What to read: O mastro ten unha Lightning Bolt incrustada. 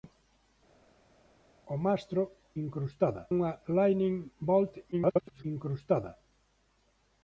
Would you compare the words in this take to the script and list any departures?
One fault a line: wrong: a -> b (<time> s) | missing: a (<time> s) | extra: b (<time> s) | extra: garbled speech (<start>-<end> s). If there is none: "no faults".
wrong: ten -> incrustada (2.6 s)
extra: garbled speech (4.9-5.4 s)